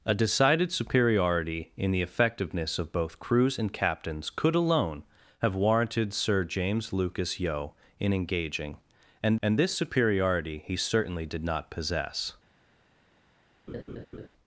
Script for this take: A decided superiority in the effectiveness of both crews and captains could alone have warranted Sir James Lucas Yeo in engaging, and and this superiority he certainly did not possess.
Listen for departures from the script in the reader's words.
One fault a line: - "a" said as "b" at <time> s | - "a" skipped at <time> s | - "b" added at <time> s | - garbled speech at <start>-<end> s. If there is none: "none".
none